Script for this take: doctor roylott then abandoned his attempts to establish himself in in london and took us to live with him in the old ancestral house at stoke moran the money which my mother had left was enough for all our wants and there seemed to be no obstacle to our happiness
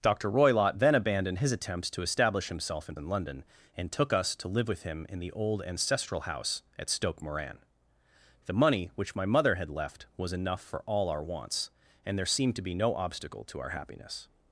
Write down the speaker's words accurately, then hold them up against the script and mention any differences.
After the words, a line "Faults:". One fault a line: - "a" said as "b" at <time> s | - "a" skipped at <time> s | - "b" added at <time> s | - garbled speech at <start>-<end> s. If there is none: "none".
doctor roylott then abandoned his attempts to establish himself in in london and took us to live with him in the old ancestral house at stoke moran the money which my mother had left was enough for all our wants and there seemed to be no obstacle to our happiness
Faults:
none